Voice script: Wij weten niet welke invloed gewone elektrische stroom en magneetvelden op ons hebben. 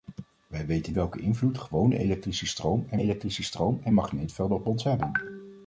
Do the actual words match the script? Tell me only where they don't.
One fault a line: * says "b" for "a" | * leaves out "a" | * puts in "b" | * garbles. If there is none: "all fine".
* leaves out "niet"
* puts in "elektrische stroom en"